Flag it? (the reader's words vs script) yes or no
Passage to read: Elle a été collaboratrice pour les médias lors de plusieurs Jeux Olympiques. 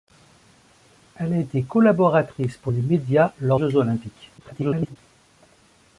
yes